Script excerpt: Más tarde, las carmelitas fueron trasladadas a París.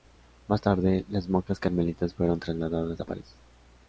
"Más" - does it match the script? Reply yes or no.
yes